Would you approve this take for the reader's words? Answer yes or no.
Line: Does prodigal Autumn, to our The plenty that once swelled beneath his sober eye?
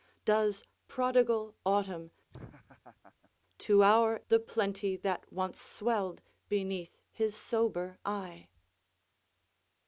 yes